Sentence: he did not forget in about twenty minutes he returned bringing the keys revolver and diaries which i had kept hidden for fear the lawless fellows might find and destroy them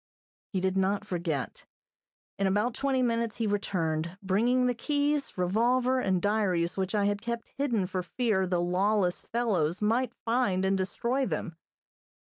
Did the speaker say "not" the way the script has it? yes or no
yes